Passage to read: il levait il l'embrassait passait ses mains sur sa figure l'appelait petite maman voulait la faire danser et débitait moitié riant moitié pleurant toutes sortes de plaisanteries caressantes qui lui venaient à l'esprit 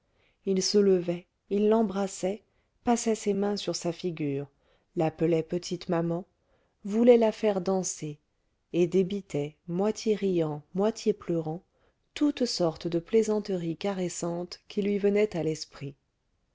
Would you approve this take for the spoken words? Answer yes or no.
no